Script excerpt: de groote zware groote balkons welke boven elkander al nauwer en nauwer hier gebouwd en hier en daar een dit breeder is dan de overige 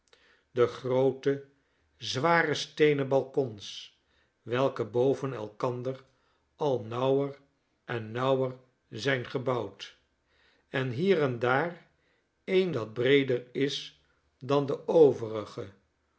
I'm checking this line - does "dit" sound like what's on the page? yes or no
no